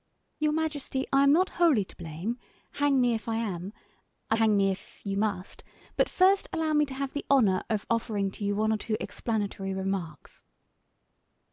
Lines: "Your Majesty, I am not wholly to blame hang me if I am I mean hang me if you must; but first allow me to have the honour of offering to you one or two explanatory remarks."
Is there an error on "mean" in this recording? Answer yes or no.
yes